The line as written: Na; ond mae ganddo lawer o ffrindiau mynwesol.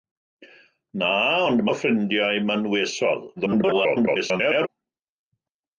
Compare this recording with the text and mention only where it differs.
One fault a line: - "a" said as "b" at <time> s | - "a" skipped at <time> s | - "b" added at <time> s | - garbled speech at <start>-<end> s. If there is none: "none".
- "mae ganddo lawer" skipped at 1.6 s
- garbled speech at 3.4-4.7 s